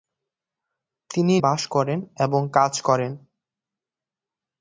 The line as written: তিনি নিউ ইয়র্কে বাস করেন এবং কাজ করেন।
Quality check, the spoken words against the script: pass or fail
fail